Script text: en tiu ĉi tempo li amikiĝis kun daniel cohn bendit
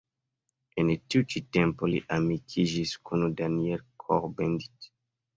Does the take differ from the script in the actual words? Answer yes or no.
no